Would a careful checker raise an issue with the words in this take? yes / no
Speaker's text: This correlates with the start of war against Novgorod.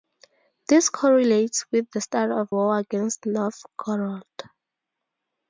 no